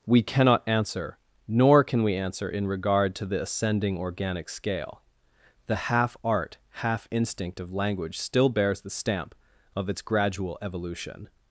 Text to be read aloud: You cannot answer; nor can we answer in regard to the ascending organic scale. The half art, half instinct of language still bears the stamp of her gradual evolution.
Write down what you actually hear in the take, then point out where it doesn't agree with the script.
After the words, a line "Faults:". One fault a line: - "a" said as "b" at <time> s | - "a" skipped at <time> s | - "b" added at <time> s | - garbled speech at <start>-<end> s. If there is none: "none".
We cannot answer; nor can we answer in regard to the ascending organic scale. The half art, half instinct of language still bears the stamp of its gradual evolution.
Faults:
- "You" said as "We" at 0.1 s
- "her" said as "its" at 9.9 s